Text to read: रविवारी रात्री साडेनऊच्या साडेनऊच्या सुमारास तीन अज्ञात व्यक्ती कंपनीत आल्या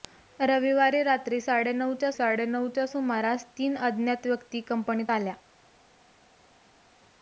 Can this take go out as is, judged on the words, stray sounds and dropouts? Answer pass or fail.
pass